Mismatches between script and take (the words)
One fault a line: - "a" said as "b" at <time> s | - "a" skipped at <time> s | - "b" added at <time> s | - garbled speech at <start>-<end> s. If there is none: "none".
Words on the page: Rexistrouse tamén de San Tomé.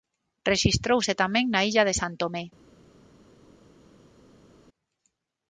- "na illa" added at 1.5 s